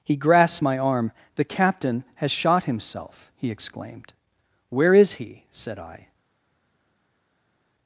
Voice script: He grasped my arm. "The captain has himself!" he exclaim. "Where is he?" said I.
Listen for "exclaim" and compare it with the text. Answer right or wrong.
wrong